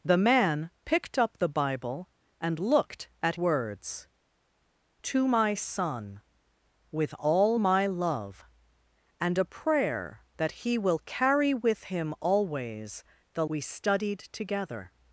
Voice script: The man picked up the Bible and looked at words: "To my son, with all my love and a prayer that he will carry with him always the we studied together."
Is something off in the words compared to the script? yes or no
no